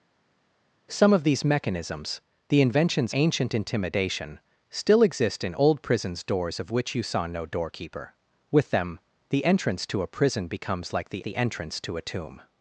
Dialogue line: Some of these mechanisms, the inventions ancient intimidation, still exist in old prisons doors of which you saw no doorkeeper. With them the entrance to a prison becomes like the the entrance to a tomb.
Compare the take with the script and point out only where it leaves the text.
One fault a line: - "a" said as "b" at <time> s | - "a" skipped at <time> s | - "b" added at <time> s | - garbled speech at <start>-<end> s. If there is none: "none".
none